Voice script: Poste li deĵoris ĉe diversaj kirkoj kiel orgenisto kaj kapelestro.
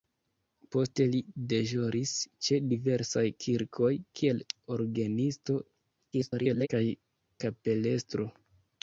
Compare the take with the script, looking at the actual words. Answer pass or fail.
fail